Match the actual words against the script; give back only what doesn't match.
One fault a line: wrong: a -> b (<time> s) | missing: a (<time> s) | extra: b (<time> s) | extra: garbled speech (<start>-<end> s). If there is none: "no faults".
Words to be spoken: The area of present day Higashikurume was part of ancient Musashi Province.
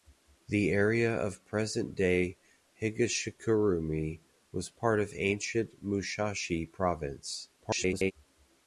extra: garbled speech (7.6-8.1 s)